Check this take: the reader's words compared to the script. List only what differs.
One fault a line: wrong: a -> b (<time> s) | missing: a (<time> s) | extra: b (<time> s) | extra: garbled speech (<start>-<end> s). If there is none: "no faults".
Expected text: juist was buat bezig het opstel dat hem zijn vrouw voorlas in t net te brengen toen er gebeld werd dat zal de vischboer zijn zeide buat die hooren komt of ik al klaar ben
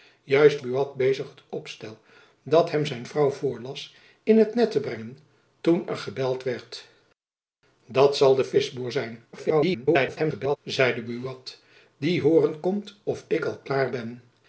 missing: was (0.6 s)
extra: garbled speech (9.3-10.6 s)